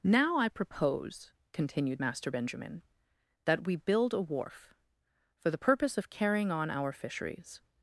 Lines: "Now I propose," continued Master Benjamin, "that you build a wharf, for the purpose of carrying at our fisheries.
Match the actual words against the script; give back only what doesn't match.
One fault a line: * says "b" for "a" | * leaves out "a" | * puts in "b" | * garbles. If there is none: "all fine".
* says "we" for "you"
* says "on" for "at"